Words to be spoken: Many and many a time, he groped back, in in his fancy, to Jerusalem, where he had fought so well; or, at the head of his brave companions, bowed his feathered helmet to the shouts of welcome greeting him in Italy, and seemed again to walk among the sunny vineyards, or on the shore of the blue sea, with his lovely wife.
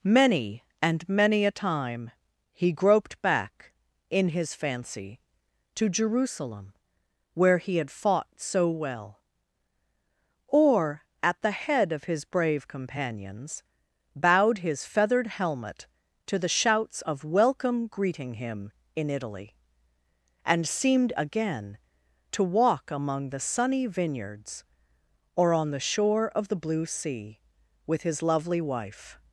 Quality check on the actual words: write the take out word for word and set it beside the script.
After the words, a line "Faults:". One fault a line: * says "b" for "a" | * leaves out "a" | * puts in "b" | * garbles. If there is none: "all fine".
Many and many a time, he groped back, in his fancy, to Jerusalem, where he had fought so well; or, at the head of his brave companions, bowed his feathered helmet to the shouts of welcome greeting him in Italy, and seemed again to walk among the sunny vineyards, or on the shore of the blue sea, with his lovely wife.
Faults:
* leaves out "in"